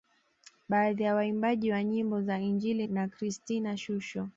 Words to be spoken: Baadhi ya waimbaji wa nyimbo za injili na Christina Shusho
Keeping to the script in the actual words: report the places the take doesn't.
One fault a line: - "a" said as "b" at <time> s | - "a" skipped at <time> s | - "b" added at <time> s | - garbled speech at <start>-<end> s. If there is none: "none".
none